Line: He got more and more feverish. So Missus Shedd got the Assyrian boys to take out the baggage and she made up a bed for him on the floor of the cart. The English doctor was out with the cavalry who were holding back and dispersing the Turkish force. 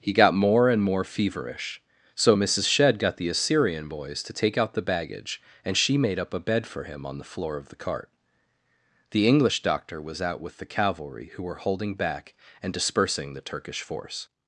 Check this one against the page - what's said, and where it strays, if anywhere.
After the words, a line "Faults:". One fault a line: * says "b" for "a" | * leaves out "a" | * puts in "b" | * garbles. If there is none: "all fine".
He got more and more feverish. So Missus Shedd got the Assyrian boys to take out the baggage and she made up a bed for him on the floor of the cart. The English doctor was out with the cavalry who were holding back and dispersing the Turkish force.
Faults:
all fine